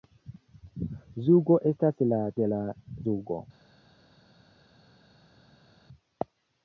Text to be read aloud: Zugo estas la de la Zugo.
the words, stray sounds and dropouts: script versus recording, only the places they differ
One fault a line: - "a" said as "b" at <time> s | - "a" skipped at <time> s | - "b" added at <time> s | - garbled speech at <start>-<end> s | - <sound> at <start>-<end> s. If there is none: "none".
none